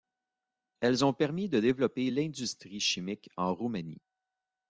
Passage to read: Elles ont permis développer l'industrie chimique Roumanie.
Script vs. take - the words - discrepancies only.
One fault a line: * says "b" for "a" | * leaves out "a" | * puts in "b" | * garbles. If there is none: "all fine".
* puts in "de"
* puts in "en"